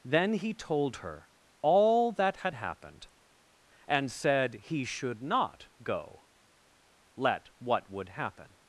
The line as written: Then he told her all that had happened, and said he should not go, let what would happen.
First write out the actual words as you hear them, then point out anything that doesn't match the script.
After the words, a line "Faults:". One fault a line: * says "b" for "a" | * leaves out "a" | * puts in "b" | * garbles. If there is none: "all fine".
Then he told her all that had happened, and said he should not go, let what would happen.
Faults:
all fine